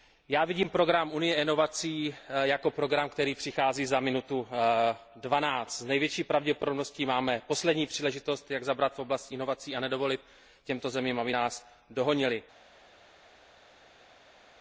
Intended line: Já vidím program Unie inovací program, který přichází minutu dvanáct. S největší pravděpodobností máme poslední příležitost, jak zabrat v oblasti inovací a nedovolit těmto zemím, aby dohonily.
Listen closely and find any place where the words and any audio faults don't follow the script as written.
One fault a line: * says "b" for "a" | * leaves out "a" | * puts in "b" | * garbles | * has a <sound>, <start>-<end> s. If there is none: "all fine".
* puts in "jako"
* puts in "za"
* puts in "nás"